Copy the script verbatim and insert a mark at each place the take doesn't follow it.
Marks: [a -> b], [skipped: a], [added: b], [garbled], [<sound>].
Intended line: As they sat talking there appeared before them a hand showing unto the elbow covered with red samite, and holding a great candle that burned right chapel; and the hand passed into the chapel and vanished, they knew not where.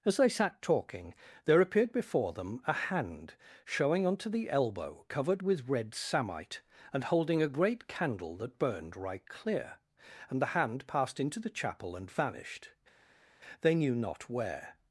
As they sat talking there appeared before them a hand showing unto the elbow covered with red samite, and holding a great candle that burned right [chapel; -> clear] and the hand passed into the chapel and vanished, they knew not where.